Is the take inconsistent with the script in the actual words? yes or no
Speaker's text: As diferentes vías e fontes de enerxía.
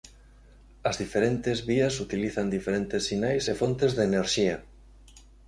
yes